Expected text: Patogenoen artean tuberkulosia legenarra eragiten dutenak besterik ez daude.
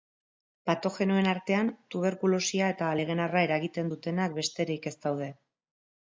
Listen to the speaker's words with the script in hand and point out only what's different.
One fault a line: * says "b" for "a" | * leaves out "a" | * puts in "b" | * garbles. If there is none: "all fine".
* puts in "eta"